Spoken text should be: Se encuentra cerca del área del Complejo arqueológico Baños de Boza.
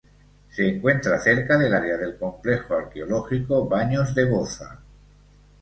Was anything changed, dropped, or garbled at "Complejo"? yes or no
no